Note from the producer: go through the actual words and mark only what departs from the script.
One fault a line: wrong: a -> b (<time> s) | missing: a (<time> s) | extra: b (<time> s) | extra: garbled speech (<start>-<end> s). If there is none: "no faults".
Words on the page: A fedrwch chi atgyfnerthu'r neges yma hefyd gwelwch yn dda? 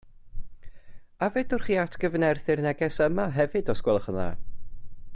extra: os (3.8 s)